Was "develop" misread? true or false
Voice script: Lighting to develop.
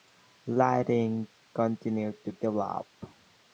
false